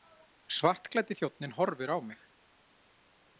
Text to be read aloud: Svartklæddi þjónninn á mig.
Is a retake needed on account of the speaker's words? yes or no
yes